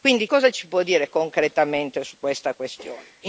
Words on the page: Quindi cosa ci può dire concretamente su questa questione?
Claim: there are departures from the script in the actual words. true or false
false